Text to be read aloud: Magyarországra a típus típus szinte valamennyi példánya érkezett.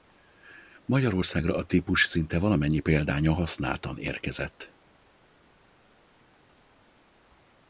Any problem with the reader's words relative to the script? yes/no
yes